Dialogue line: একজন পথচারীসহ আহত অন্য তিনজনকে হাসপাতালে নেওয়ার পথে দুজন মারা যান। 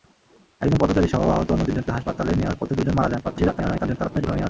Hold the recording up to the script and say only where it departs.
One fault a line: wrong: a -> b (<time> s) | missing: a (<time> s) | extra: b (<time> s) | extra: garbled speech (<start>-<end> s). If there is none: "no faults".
extra: garbled speech (3.2-4.5 s)